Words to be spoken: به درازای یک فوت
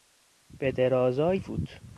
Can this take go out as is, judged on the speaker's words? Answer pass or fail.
fail